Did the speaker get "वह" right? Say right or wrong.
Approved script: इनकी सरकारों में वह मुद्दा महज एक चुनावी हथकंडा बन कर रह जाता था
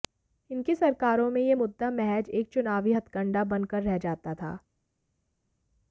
wrong